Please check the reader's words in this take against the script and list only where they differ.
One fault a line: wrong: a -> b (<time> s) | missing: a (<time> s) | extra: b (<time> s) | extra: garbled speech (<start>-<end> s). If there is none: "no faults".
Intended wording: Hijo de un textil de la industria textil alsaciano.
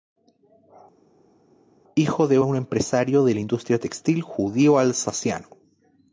wrong: textil -> empresario (2.5 s)
extra: judío (4.2 s)